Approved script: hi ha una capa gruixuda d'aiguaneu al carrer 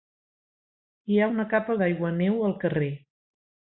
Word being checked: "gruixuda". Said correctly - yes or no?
no